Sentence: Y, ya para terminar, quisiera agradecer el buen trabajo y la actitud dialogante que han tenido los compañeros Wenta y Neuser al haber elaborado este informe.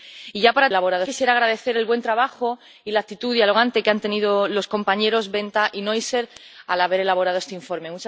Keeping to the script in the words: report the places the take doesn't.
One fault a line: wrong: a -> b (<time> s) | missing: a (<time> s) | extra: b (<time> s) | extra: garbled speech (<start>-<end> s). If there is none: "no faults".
wrong: terminar -> elaborado (0.7 s)